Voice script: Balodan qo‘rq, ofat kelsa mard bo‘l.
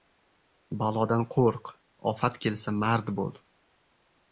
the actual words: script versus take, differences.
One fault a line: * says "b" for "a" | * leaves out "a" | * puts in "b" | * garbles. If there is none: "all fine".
all fine